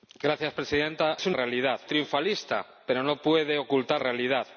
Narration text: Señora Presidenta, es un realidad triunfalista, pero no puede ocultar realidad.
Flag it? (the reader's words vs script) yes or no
no